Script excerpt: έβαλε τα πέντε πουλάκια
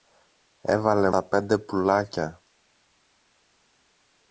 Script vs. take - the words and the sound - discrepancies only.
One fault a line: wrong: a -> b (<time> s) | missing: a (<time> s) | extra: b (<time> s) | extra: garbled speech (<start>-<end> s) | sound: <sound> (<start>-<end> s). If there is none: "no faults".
no faults